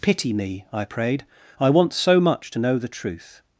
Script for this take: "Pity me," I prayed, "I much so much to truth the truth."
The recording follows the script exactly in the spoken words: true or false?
false